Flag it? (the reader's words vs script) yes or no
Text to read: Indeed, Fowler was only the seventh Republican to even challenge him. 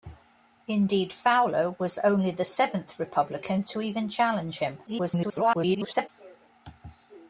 yes